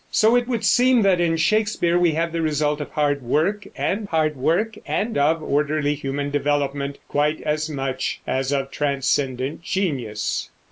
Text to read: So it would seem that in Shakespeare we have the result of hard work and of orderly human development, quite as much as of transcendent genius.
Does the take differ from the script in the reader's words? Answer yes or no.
yes